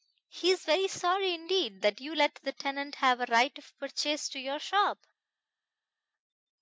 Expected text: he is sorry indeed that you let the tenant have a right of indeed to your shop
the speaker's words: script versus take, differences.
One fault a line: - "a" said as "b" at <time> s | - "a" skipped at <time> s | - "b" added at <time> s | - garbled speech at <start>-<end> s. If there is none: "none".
- "very" added at 0.7 s
- "indeed" said as "purchase" at 3.8 s